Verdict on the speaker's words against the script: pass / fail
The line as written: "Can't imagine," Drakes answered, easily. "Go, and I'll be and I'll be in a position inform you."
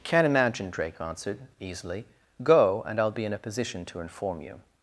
fail